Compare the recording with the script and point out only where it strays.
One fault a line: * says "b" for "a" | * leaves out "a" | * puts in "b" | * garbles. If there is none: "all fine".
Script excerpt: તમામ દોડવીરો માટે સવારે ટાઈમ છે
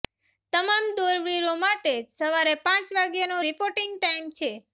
* puts in "પાંચ વાગ્યાનો રિપોર્ટિંગ"